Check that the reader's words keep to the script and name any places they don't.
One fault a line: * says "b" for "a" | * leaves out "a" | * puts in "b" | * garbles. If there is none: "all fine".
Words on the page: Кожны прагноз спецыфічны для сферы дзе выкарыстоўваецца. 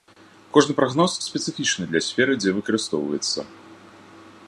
all fine